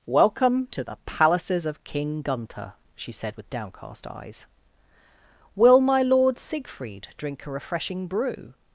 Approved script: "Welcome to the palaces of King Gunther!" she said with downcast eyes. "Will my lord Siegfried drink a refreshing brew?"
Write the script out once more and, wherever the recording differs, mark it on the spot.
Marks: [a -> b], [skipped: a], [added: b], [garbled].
"Welcome to the palaces of King Gunther!" she said with downcast eyes. "Will my lord Siegfried drink a refreshing brew?"